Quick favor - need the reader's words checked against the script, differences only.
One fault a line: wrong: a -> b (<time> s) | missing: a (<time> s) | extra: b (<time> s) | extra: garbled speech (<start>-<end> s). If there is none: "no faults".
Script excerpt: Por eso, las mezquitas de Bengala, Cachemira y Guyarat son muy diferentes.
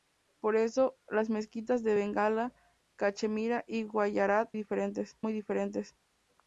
wrong: son -> diferentes (4.6 s)